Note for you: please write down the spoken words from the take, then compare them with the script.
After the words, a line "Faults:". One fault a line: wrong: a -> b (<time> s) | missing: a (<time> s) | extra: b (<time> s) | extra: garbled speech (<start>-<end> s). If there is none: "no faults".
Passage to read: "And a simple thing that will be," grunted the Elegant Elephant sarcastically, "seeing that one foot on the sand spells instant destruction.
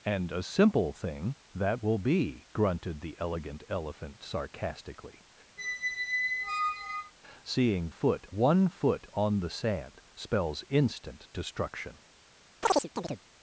"And a simple thing that will be," grunted the Elegant Elephant sarcastically, "seeing foot one foot on the sand spells instant destruction.
Faults:
wrong: that -> foot (7.9 s)